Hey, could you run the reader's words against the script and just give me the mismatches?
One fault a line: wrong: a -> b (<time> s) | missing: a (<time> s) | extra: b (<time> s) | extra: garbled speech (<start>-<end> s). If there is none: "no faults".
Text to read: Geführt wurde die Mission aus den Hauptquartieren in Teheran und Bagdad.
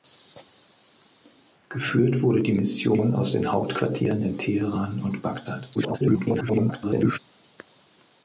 extra: garbled speech (5.7-7.2 s)